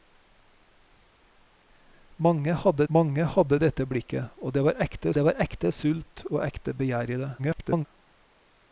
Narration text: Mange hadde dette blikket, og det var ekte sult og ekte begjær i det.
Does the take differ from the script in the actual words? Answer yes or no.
yes